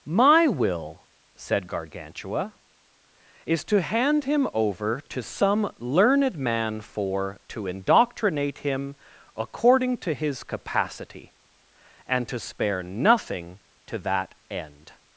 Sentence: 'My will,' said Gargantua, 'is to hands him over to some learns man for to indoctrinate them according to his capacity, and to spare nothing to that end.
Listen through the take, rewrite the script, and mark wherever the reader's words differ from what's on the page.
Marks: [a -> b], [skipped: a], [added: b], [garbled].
'My will,' said Gargantua, 'is to [hands -> hand] him over to some [learns -> learned] man for to indoctrinate [them -> him] according to his capacity, and to spare nothing to that end.